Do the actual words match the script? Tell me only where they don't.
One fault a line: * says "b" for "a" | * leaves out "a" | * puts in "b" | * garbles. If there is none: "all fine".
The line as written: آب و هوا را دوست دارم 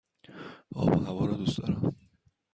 all fine